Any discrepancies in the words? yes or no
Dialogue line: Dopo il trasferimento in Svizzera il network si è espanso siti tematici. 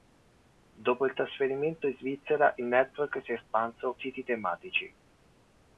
no